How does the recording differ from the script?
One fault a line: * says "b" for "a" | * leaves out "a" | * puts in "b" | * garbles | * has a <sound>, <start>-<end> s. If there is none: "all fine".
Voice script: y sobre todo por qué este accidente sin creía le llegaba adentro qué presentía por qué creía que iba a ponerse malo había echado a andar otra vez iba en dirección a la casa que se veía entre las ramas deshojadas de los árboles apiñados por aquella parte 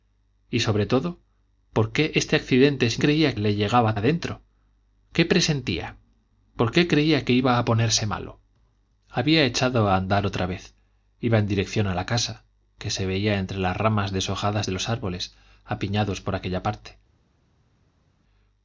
all fine